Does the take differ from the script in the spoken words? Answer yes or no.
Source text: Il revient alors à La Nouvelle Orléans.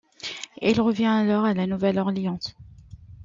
no